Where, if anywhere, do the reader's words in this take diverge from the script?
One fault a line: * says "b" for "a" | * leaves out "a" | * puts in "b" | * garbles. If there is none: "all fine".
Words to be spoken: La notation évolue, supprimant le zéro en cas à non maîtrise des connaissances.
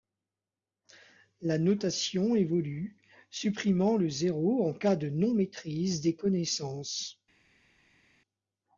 * says "de" for "à"